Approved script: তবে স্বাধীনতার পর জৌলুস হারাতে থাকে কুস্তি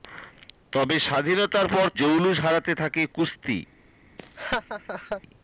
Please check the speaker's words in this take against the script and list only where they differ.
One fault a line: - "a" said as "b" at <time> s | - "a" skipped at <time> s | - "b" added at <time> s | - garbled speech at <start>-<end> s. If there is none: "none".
none